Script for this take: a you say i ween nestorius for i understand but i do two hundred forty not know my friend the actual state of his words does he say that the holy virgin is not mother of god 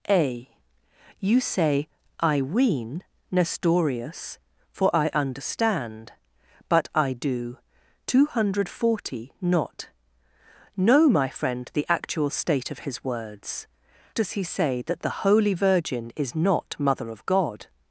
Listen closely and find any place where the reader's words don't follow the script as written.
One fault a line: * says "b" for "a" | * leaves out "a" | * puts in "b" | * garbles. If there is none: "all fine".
all fine